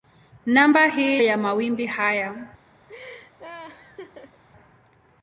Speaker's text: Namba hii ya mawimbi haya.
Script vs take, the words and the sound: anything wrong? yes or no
yes